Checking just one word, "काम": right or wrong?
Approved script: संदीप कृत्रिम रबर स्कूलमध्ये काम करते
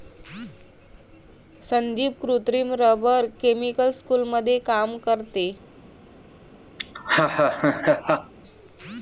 right